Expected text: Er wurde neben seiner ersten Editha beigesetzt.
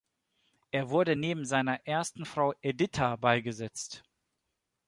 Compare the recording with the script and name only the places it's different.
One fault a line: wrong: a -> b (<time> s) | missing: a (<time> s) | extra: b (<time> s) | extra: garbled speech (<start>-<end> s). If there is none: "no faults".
extra: Frau (2.2 s)